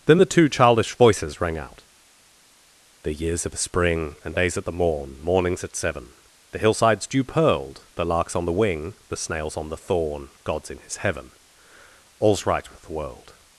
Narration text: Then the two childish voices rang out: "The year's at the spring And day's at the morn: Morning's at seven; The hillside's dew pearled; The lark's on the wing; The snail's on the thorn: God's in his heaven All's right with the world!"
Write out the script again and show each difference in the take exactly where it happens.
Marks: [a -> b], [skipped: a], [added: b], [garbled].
Then the two childish voices rang out: "The year's [at -> of] the spring And day's at the morn: Morning's at seven; The hillside's dew pearled; The lark's on the wing; The snail's on the thorn: God's in his heaven All's right with the world!"